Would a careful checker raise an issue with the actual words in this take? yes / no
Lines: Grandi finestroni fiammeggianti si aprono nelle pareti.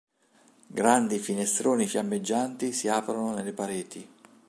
no